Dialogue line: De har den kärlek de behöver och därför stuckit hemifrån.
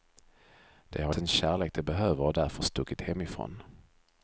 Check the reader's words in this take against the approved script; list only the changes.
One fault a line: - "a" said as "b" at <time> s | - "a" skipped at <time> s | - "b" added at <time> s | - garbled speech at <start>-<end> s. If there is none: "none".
none